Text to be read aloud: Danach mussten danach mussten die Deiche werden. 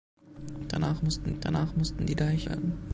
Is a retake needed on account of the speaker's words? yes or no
no